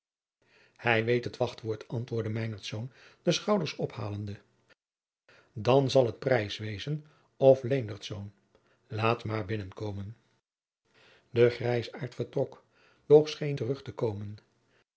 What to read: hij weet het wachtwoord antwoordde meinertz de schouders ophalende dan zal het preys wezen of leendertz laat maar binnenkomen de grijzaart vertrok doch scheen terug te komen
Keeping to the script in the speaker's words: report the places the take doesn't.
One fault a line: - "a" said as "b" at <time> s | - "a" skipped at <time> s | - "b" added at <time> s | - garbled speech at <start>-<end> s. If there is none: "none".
none